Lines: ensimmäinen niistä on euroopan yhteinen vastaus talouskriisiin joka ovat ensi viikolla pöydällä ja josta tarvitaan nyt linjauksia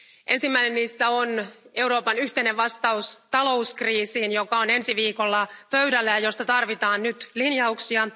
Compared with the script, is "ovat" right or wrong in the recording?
wrong